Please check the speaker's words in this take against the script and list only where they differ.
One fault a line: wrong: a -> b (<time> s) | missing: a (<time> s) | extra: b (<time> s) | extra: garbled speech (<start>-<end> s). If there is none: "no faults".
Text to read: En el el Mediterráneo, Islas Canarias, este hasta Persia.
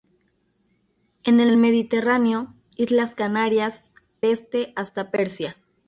no faults